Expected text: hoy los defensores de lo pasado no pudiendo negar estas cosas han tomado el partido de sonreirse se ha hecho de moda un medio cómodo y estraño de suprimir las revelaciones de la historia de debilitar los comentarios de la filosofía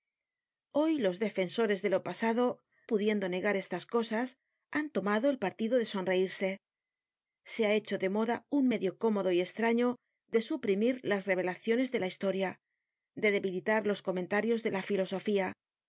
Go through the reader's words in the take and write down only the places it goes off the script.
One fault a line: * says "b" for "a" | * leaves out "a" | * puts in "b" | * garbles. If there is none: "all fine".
* leaves out "no"